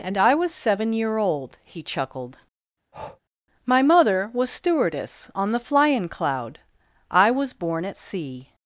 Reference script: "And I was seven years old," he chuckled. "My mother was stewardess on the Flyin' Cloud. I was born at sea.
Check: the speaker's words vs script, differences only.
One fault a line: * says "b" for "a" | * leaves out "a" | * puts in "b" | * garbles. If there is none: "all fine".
* says "year" for "years"